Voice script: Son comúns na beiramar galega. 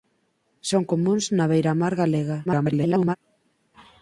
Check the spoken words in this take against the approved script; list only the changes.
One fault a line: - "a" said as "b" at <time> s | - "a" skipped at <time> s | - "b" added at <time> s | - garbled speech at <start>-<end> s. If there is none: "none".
- garbled speech at 2.4-3.2 s